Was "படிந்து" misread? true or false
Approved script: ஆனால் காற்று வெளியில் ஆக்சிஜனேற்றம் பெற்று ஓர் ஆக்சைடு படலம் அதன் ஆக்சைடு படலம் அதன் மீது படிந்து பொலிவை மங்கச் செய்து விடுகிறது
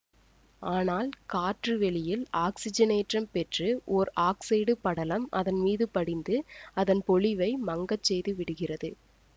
true